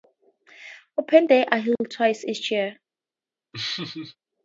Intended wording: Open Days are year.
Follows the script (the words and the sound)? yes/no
no